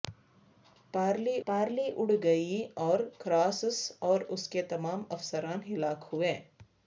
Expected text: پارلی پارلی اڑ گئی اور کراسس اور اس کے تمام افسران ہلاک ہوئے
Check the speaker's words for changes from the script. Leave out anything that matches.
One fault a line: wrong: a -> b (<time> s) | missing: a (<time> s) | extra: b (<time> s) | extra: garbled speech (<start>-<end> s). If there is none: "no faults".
no faults